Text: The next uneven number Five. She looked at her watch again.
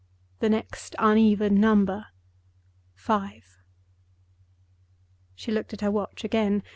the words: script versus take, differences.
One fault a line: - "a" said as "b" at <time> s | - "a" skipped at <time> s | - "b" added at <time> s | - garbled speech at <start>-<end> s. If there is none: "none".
none